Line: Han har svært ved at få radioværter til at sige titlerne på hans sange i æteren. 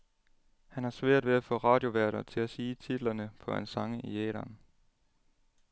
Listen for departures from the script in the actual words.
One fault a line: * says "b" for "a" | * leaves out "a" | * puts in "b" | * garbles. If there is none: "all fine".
all fine